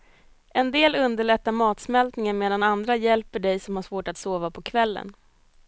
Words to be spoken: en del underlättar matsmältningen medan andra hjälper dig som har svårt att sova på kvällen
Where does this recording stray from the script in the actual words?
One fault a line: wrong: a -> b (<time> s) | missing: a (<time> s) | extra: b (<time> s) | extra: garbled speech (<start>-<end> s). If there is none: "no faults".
no faults